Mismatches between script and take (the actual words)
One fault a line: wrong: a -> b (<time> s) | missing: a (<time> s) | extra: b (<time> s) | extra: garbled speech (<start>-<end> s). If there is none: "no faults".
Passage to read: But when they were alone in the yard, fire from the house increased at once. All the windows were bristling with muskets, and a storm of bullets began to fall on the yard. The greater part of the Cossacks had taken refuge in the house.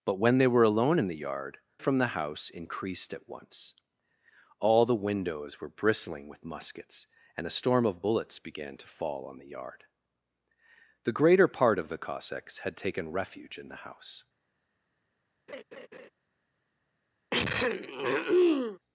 missing: fire (1.6 s)